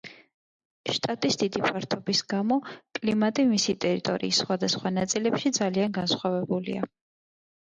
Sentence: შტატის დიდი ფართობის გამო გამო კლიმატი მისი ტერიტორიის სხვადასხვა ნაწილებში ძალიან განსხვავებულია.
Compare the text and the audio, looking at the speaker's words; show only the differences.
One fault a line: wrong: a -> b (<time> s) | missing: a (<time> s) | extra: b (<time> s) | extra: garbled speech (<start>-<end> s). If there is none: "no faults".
missing: გამო (2.6 s)